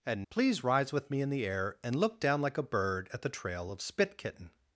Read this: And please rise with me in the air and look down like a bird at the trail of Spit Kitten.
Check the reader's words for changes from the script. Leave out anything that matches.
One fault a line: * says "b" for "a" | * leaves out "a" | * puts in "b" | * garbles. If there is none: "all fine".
all fine